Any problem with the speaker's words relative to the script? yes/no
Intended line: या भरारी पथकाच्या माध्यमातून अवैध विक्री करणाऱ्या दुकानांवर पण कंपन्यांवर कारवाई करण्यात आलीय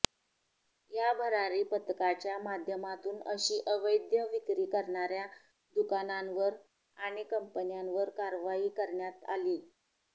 yes